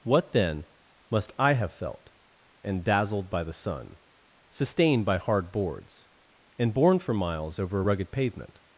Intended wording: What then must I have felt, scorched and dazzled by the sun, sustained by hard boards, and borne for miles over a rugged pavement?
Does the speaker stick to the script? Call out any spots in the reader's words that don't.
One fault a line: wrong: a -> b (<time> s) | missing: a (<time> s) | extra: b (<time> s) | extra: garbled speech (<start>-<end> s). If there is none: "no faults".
missing: scorched (2.1 s)